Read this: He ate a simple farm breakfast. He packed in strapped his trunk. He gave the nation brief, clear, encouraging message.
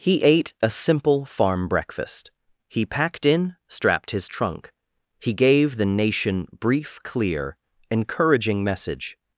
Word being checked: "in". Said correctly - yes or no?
yes